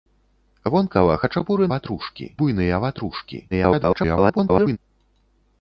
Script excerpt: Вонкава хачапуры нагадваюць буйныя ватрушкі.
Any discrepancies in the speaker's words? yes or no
yes